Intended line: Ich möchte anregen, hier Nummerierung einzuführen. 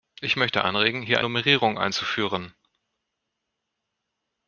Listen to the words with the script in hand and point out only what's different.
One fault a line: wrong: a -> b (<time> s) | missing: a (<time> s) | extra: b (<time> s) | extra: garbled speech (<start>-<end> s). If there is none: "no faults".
no faults